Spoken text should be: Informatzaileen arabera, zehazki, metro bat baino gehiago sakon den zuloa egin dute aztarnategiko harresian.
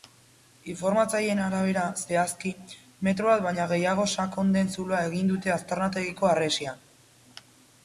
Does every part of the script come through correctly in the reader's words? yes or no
yes